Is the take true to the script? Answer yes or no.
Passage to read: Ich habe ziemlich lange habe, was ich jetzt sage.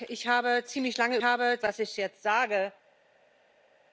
yes